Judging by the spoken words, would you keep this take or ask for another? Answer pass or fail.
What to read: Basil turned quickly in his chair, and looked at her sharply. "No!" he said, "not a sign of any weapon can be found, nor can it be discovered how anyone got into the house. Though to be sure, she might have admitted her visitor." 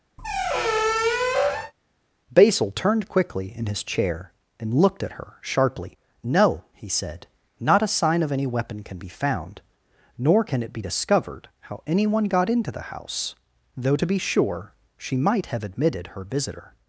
pass